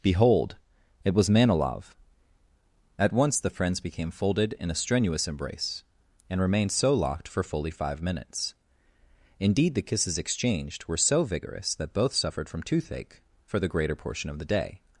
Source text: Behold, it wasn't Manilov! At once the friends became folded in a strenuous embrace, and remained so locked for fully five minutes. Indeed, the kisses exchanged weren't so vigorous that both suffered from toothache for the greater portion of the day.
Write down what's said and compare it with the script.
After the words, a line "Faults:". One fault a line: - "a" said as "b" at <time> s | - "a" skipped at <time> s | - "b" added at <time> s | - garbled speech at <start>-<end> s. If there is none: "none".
Behold, it was Manilov! At once the friends became folded in a strenuous embrace, and remained so locked for fully five minutes. Indeed, the kisses exchanged were so vigorous that both suffered from toothache for the greater portion of the day.
Faults:
- "wasn't" said as "was" at 1.1 s
- "weren't" said as "were" at 10.8 s